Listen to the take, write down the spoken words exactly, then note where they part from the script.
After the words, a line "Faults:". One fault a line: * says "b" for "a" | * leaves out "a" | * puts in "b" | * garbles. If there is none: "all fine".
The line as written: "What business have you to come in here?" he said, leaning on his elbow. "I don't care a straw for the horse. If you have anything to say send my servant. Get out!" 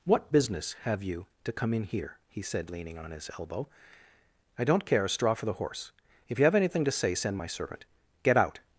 "What business have you to come in here?" he said, leaning on his elbow. "I don't care a straw for the horse. If you have anything to say send my servant. Get out!"
Faults:
all fine